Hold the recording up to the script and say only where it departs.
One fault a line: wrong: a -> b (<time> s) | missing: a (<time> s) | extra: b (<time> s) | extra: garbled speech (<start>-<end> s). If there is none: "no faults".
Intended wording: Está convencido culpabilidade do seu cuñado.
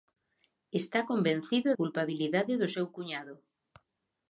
no faults